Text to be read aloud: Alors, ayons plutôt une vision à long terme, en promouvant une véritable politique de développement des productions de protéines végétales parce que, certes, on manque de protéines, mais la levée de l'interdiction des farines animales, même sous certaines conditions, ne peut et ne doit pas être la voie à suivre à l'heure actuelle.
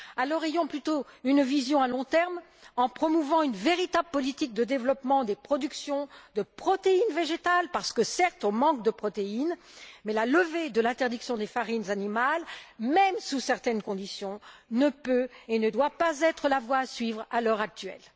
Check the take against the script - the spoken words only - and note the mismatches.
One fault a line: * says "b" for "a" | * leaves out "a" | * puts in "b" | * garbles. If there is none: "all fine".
all fine